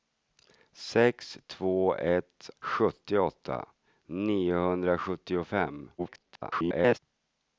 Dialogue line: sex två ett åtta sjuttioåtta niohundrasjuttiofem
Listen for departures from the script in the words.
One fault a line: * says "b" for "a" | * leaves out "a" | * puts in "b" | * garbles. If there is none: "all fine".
* leaves out "åtta"
* garbles